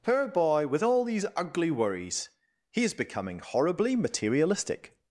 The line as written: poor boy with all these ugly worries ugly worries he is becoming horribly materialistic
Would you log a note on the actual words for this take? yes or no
yes